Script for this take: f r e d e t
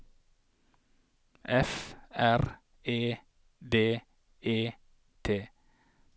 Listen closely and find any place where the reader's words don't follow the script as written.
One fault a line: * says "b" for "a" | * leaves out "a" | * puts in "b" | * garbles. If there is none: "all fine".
all fine